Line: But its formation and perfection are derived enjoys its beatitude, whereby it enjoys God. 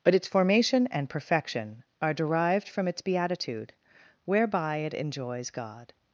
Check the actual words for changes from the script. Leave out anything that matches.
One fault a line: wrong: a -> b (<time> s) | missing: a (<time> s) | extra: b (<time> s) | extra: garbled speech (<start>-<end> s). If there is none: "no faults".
wrong: enjoys -> from (2.7 s)